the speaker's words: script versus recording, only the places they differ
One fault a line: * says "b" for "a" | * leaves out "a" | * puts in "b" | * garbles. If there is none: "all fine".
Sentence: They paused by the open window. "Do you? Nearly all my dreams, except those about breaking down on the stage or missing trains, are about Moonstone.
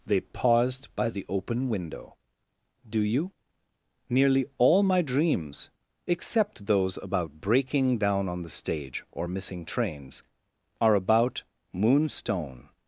all fine